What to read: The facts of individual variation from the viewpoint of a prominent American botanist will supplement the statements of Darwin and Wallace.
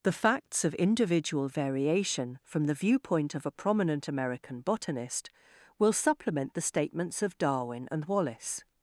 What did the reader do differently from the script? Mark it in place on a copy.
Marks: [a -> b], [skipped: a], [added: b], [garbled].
The facts of individual variation from the viewpoint of a prominent American botanist will supplement the statements of Darwin and Wallace.